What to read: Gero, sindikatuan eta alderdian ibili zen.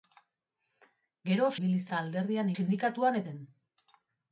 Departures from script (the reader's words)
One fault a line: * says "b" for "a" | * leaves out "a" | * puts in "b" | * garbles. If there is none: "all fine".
* says "ibili" for "sindikatuan"
* says "sindikatuan" for "ibili"